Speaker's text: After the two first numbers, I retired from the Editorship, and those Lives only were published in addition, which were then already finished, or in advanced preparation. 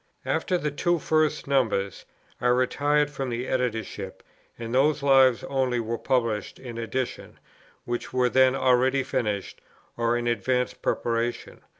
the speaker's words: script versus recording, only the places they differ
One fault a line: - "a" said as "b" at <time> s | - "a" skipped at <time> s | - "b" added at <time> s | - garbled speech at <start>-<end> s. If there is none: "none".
none